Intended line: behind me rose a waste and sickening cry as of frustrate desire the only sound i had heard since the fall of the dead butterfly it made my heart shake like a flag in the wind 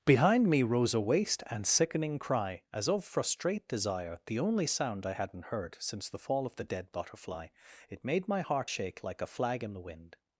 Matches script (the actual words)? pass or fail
fail